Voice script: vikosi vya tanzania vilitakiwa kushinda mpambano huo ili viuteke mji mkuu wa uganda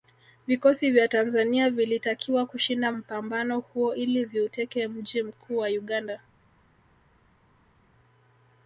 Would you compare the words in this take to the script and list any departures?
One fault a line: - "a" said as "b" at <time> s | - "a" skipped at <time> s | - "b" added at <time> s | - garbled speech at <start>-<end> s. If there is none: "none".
none